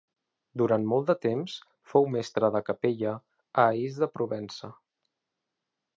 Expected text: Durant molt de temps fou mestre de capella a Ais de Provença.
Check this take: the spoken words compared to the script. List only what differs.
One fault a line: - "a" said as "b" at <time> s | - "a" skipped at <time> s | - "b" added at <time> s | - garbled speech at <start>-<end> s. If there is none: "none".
none